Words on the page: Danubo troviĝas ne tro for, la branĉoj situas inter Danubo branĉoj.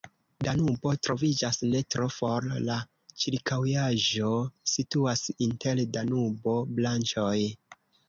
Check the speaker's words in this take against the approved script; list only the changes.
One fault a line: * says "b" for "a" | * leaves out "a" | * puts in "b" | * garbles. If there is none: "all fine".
* says "ĉirkaŭaĵo" for "branĉoj"